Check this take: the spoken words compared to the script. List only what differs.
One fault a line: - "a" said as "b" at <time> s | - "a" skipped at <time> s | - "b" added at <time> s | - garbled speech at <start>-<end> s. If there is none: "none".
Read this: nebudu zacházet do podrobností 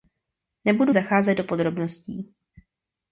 none